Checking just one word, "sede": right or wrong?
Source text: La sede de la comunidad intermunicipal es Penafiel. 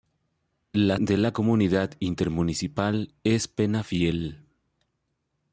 wrong